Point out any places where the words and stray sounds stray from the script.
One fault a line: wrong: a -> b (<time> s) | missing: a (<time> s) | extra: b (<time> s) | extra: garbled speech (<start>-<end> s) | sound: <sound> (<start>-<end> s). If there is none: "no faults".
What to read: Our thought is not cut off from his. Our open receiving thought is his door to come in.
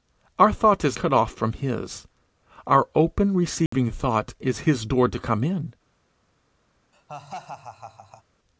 missing: not (1.0 s)
sound: dropout (3.7-3.7 s)
sound: laugh (6.9-8.2 s)